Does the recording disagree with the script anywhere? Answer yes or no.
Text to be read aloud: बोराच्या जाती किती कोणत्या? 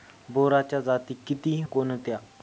no